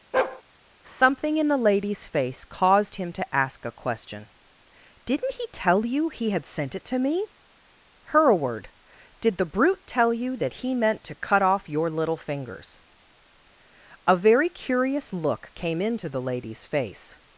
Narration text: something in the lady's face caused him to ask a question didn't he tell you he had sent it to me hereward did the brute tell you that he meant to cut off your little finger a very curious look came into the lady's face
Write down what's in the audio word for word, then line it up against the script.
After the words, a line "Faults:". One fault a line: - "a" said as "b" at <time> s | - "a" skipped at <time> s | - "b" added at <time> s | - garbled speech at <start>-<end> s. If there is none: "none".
something in the lady's face caused him to ask a question didn't he tell you he had sent it to me hereward did the brute tell you that he meant to cut off your little fingers a very curious look came into the lady's face
Faults:
- "finger" said as "fingers" at 12.2 s